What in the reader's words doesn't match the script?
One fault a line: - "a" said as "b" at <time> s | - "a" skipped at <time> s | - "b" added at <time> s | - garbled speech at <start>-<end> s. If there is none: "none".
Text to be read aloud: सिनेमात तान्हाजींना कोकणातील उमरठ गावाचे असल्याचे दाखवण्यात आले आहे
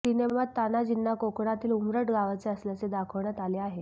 none